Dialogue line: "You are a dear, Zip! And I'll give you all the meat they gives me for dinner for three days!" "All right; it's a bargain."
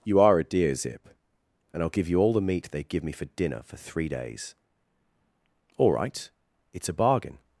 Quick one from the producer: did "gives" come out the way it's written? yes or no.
no